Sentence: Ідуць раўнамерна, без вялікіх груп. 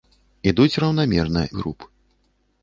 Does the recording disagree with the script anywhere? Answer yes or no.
yes